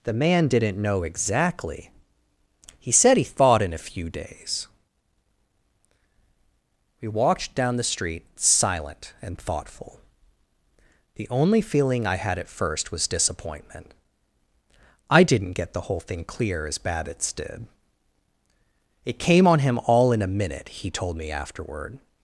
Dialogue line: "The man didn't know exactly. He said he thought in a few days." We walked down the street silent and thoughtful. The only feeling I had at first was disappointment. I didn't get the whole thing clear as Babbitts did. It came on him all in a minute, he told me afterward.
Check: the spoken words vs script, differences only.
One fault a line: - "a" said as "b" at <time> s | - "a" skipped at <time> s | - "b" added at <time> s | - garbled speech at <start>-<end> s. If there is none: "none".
none